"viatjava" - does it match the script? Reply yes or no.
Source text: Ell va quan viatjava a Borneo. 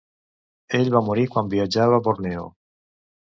yes